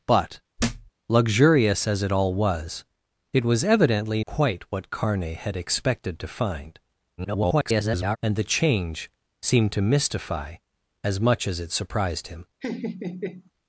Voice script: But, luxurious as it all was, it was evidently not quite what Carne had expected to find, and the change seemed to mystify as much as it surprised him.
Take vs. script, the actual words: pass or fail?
fail